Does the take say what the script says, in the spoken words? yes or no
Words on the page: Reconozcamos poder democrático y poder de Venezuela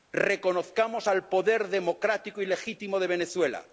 no